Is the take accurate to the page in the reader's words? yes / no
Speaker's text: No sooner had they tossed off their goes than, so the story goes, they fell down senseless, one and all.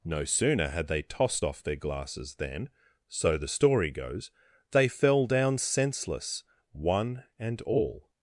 no